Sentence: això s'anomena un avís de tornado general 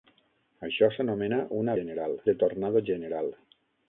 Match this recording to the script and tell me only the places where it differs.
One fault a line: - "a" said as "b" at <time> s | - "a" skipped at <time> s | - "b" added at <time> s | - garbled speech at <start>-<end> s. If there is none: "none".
- "avís" said as "general" at 1.8 s